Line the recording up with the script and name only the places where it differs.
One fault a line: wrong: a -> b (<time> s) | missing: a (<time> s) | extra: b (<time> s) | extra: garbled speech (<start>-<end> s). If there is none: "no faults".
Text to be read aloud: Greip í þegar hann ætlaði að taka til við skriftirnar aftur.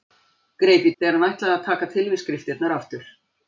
no faults